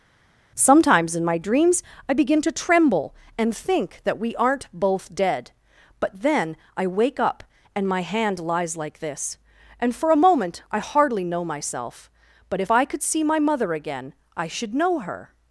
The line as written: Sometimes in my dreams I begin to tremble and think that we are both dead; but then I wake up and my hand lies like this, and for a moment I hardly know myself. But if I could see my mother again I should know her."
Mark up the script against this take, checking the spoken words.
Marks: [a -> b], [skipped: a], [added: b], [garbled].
Sometimes in my dreams I begin to tremble and think that we [are -> aren't] both dead; but then I wake up and my hand lies like this, and for a moment I hardly know myself. But if I could see my mother again I should know her."